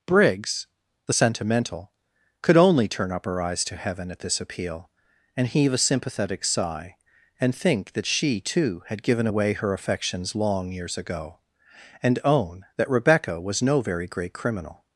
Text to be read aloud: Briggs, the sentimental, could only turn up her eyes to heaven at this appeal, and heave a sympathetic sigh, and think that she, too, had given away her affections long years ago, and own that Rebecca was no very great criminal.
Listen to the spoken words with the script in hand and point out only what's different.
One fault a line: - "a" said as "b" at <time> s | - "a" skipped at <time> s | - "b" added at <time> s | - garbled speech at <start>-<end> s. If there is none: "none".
none